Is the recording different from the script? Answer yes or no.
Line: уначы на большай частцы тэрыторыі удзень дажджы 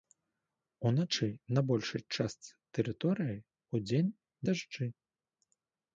no